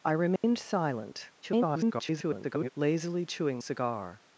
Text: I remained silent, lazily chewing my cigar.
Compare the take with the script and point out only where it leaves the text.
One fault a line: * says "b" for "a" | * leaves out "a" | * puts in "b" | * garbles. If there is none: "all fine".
* garbles
* leaves out "my"